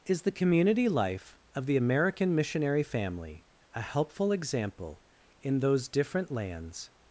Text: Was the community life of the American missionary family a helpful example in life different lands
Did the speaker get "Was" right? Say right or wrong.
wrong